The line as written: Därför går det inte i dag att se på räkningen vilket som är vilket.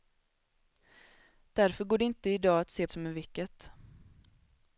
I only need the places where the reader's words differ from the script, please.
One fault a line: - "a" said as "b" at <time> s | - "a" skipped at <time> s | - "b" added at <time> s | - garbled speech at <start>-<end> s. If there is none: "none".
- "på räkningen vilket" skipped at 2.9 s